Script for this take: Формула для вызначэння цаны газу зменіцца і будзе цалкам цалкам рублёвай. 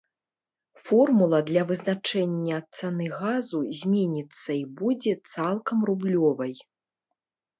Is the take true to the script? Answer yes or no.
no